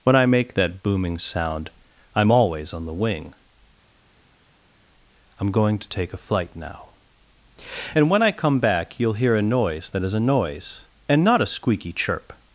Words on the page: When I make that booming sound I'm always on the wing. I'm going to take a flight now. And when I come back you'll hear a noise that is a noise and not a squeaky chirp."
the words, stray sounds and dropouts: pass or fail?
pass